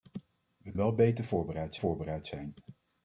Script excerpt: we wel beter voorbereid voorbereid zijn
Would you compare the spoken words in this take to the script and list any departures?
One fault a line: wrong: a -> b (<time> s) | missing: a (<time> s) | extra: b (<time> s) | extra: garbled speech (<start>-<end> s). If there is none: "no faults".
no faults